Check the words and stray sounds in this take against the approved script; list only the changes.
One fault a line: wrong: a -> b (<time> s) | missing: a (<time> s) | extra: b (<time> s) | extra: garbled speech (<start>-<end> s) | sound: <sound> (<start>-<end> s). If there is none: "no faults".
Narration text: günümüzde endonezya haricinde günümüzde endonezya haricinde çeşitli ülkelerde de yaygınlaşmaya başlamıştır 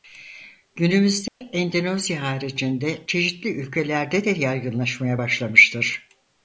sound: dropout (1.3-1.4 s)
missing: günümüzde endonezya haricinde (3.0 s)